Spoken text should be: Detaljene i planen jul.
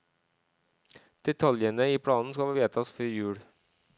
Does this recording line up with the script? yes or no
no